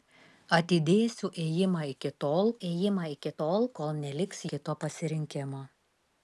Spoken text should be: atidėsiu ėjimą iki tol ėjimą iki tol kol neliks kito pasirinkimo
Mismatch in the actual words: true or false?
false